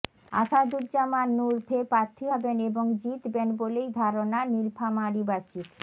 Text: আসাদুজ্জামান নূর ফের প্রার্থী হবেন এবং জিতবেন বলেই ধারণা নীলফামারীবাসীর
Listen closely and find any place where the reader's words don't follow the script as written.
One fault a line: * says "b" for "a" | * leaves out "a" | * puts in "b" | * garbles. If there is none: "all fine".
all fine